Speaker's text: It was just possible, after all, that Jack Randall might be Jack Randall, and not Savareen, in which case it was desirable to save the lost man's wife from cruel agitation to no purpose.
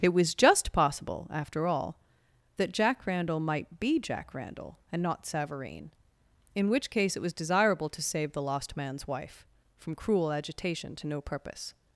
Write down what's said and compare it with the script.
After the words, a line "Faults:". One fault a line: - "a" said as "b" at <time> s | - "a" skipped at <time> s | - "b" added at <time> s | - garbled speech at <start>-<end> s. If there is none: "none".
It was just possible, after all, that Jack Randall might be Jack Randall, and not Savareen, in which case it was desirable to save the lost man's wife from cruel agitation to no purpose.
Faults:
none